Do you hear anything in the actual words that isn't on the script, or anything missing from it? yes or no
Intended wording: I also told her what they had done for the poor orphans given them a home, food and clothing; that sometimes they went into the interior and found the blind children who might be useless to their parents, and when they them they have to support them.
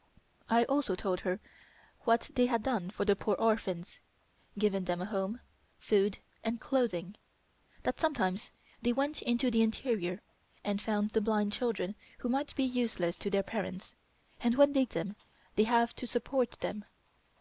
no